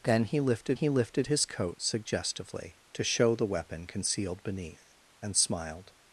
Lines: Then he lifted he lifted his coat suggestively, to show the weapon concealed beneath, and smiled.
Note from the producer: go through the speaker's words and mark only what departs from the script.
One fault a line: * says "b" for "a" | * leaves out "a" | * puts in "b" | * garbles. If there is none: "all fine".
all fine